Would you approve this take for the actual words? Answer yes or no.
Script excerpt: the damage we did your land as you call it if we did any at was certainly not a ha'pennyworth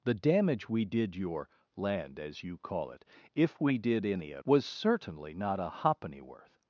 yes